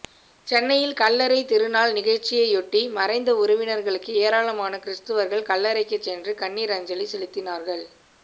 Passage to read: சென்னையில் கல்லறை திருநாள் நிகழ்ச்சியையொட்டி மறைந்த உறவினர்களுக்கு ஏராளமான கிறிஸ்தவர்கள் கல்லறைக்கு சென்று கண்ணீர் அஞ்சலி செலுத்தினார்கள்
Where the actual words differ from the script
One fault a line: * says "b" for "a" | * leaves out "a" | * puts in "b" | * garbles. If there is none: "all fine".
all fine